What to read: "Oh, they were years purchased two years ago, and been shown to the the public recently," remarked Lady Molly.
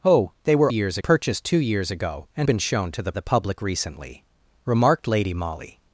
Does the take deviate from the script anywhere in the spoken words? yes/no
no